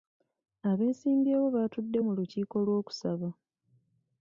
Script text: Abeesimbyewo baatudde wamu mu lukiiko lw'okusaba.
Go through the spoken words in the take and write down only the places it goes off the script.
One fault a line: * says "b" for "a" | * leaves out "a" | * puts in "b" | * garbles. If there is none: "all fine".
* leaves out "wamu"